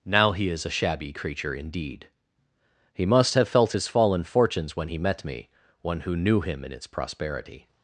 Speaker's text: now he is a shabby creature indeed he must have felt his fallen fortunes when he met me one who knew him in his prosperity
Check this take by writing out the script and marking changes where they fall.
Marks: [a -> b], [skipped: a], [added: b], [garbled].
now he is a shabby creature indeed he must have felt his fallen fortunes when he met me one who knew him in [his -> its] prosperity